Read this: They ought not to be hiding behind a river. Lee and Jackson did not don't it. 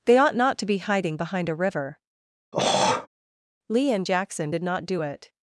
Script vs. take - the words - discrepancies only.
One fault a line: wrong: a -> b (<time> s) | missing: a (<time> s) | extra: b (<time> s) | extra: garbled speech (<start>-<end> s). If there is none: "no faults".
wrong: don't -> do (4.9 s)